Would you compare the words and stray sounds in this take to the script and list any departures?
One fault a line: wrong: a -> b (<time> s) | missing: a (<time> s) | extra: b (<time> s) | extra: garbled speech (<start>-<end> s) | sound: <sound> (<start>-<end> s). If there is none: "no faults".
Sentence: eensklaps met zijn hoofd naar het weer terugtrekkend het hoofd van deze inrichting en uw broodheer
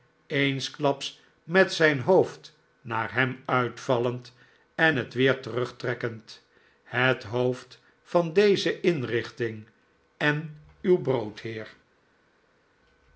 extra: hem uitvallend en (3.1 s)